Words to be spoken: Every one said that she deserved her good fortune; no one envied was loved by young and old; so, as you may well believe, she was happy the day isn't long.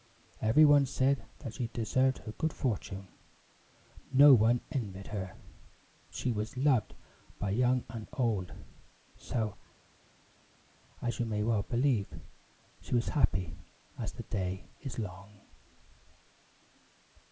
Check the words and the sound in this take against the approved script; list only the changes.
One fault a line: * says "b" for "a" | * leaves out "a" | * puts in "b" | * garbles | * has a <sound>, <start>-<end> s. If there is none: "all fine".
* puts in "her she"
* puts in "as"
* says "is" for "isn't"